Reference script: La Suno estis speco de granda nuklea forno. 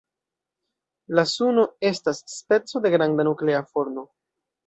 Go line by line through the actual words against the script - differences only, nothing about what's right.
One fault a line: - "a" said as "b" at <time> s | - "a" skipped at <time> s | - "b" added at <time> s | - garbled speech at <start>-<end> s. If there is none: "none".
- "estis" said as "estas" at 1.9 s